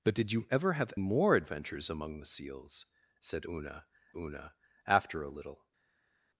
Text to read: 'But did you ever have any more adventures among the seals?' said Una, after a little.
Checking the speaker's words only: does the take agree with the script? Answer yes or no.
no